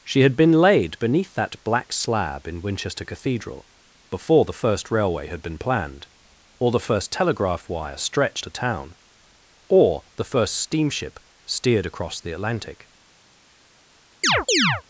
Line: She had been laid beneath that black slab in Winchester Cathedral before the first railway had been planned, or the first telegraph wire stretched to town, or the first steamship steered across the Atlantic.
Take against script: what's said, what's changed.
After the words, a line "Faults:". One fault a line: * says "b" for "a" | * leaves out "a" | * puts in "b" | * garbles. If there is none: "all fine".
She had been laid beneath that black slab in Winchester Cathedral before the first railway had been planned, or the first telegraph wire stretched to town, or the first steamship steered across the Atlantic.
Faults:
all fine